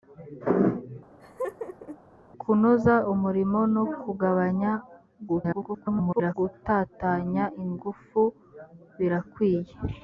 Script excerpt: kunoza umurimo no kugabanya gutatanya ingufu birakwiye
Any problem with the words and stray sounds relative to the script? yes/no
yes